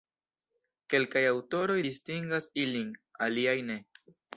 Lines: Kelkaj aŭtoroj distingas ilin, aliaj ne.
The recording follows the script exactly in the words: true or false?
true